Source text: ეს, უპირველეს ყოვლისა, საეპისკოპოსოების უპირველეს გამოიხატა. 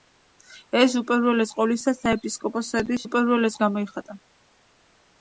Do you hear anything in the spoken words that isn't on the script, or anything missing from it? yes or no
no